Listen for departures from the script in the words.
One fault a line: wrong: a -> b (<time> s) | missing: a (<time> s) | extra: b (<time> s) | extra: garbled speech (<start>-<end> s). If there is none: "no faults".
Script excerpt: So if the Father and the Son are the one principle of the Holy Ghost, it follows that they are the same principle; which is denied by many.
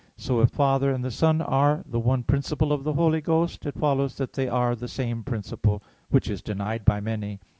missing: the (0.5 s)